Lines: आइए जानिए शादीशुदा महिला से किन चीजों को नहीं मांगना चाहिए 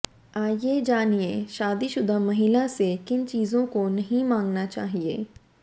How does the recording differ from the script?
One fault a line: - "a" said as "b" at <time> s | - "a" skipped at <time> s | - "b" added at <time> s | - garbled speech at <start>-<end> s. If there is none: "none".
none